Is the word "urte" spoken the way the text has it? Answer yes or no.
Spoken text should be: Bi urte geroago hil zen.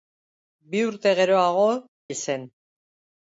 yes